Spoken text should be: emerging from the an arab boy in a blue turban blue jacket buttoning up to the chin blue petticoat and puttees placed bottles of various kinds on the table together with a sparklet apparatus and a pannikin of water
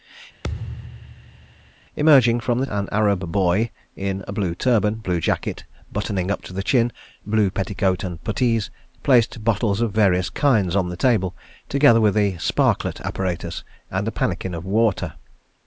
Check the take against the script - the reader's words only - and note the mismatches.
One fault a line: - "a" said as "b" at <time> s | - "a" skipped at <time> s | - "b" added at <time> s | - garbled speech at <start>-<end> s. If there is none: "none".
none